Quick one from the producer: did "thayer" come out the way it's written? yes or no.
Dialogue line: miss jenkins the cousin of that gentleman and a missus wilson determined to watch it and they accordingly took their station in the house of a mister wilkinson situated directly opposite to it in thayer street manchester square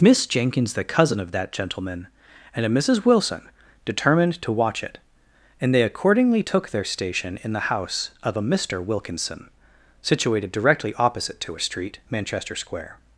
no